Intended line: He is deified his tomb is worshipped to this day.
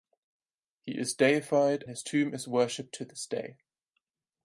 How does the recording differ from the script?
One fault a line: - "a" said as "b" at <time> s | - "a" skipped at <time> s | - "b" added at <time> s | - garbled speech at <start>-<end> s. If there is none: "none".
none